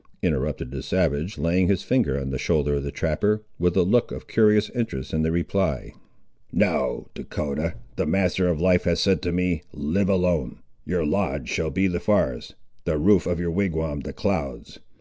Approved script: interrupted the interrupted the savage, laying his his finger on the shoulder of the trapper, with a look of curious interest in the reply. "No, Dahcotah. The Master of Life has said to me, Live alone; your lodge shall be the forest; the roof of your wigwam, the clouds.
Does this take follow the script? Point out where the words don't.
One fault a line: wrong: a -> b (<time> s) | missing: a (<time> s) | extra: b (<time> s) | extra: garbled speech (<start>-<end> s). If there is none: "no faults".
missing: interrupted the (0.8 s)
missing: his (1.8 s)